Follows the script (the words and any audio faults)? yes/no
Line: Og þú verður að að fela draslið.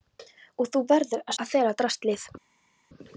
yes